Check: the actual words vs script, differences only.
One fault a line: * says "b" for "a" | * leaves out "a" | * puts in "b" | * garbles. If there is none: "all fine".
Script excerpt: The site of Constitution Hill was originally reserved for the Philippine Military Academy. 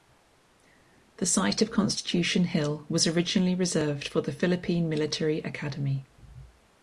all fine